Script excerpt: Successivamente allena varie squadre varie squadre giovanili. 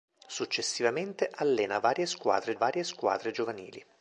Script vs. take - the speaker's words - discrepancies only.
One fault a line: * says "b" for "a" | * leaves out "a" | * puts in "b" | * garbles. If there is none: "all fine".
all fine